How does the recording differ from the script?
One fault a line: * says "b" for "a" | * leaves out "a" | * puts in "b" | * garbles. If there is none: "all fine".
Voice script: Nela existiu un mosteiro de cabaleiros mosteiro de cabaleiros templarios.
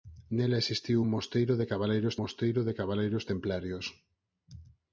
all fine